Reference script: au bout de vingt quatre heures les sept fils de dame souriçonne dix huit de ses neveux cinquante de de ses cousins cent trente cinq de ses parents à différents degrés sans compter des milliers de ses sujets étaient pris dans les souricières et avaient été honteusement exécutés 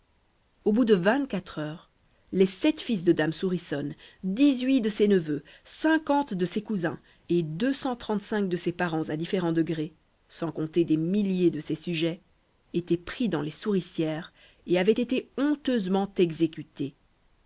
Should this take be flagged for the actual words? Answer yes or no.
yes